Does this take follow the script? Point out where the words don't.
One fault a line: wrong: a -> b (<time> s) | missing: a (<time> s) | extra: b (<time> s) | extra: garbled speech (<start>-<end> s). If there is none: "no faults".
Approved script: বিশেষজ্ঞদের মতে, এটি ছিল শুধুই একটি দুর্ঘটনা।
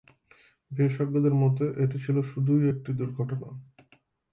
no faults